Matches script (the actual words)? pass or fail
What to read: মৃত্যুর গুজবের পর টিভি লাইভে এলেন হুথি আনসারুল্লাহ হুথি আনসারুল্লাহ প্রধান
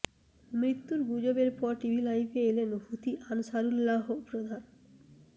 fail